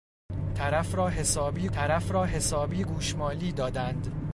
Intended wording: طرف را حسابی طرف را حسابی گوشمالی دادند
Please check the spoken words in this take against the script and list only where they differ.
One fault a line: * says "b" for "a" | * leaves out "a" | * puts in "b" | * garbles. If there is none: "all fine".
all fine